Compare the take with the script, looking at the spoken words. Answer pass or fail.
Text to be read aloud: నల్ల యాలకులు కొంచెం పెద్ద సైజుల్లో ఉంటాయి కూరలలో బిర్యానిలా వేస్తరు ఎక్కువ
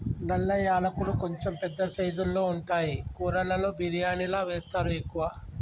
pass